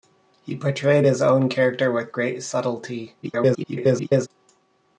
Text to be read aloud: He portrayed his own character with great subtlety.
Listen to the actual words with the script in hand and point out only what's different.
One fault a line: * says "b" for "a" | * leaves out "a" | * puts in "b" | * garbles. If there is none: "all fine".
* garbles